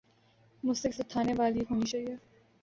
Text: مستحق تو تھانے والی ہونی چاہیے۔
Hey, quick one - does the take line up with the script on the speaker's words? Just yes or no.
yes